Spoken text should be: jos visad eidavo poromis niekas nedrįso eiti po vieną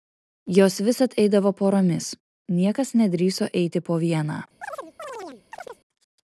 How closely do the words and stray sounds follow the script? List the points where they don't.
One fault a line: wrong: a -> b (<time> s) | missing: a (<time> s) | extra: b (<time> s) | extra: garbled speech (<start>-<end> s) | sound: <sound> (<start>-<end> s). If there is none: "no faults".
sound: chirp (4.6-5.8 s)